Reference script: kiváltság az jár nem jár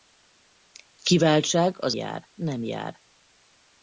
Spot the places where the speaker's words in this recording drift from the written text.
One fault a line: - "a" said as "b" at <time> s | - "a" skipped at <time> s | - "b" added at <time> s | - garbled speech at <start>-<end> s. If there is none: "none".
none